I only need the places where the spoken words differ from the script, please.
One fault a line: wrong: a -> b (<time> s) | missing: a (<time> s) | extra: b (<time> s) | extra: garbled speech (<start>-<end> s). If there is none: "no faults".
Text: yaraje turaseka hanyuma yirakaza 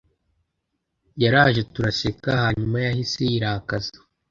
extra: yahise (2.9 s)